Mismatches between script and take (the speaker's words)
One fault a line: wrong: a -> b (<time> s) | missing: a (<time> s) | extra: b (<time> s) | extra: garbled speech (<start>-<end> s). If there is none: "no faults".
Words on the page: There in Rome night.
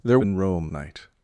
no faults